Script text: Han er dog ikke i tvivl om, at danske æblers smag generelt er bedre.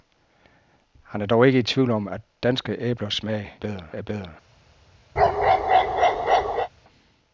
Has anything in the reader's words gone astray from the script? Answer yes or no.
yes